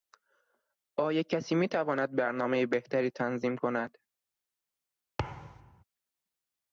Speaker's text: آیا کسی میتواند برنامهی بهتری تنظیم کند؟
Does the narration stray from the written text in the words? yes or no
no